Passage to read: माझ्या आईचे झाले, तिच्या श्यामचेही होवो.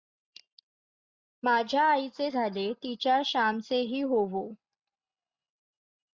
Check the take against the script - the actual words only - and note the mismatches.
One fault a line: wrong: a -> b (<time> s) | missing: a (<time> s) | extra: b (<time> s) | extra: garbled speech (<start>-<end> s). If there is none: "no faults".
no faults